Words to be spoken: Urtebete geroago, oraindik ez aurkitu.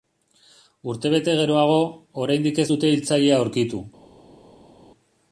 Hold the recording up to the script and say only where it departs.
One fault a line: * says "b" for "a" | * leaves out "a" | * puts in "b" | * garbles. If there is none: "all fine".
* puts in "dute hiltzailea"